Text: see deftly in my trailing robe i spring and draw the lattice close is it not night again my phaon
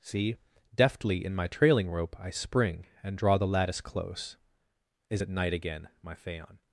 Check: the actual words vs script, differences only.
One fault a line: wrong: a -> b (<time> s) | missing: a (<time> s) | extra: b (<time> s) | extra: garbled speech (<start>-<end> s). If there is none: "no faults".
wrong: robe -> rope (1.9 s)
missing: not (5.3 s)